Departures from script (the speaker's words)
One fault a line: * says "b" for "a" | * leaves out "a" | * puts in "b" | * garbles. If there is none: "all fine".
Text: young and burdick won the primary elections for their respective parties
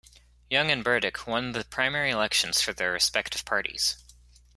all fine